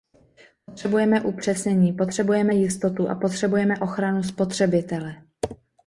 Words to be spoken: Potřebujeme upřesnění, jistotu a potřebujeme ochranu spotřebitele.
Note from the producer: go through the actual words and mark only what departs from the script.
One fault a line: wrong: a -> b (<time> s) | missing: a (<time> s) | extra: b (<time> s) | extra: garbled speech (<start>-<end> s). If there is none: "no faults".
extra: potřebujeme (1.9 s)